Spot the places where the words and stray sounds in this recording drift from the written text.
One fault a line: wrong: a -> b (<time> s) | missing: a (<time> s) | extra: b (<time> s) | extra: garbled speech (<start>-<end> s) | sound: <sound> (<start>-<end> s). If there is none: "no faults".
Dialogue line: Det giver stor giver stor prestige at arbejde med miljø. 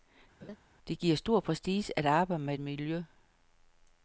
sound: laugh (0.4-0.6 s)
missing: giver stor (1.4 s)